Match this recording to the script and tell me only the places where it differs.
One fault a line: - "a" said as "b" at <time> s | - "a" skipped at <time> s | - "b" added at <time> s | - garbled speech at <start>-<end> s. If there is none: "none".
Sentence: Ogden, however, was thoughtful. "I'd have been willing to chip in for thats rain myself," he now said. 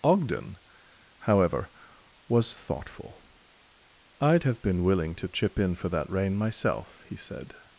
- "thats" said as "that" at 5.9 s
- "now" skipped at 7.2 s